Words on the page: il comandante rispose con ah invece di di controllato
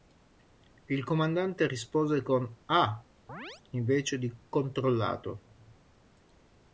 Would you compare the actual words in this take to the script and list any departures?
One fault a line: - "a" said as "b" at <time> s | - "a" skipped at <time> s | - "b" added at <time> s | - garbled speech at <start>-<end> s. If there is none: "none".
- "di" skipped at 4.3 s